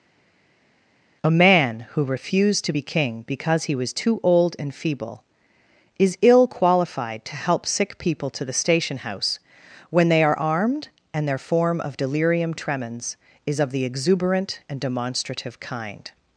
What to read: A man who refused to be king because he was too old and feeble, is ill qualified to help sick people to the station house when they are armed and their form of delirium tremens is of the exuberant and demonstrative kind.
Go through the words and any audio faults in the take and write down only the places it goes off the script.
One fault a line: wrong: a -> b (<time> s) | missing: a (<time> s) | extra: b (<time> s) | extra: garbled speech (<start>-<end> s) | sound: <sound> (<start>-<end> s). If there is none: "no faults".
no faults